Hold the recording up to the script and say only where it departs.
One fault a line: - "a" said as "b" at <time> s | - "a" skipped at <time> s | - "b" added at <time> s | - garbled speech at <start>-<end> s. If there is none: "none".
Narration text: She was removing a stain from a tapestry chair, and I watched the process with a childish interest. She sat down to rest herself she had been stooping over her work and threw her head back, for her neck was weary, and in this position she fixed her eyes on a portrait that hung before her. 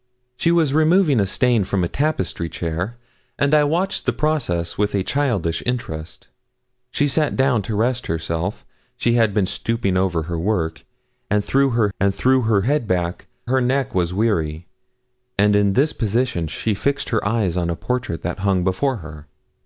- "and threw her" added at 12.0 s
- "for" skipped at 13.3 s